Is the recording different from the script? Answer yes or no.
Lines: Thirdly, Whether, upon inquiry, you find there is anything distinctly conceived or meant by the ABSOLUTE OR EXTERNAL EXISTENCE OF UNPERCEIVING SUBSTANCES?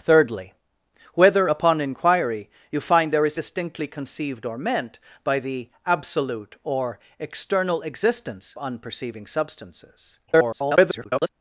yes